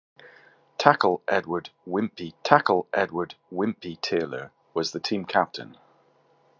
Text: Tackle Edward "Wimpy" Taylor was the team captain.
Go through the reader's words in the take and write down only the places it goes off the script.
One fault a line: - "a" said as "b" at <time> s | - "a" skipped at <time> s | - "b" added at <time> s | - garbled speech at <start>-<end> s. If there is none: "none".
- "tackle Edward Wimpy" added at 2.4 s